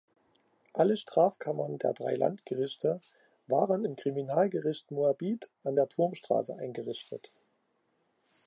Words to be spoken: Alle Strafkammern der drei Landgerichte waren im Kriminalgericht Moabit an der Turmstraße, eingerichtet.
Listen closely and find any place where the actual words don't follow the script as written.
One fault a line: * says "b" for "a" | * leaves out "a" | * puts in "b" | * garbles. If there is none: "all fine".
all fine